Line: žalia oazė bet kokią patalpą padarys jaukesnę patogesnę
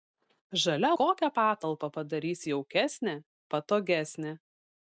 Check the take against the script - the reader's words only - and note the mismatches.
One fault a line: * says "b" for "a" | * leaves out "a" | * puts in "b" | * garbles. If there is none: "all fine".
* leaves out "oazė bet"